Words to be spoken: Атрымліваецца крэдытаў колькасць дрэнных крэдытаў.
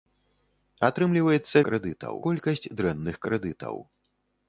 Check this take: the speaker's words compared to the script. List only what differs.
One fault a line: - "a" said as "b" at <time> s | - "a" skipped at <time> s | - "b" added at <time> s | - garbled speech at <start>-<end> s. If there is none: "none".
none